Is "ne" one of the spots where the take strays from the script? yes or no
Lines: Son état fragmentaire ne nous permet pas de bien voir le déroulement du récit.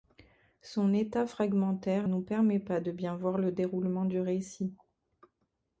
yes